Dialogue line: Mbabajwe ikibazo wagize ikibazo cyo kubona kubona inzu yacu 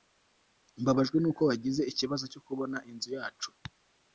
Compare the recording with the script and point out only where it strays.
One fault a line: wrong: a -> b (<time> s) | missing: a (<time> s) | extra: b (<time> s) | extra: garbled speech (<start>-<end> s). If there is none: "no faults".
wrong: ikibazo -> nuko (1.2 s)
missing: kubona (2.8 s)